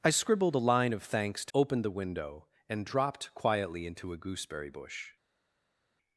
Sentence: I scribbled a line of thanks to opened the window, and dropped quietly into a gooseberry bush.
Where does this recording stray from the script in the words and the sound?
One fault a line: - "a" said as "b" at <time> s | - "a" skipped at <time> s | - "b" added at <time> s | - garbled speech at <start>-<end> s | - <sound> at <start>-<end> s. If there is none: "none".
none